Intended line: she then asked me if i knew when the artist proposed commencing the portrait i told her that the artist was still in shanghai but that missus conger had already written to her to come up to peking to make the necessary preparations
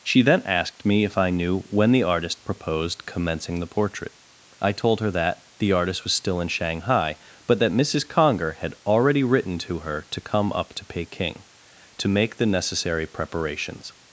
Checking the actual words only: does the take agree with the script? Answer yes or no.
yes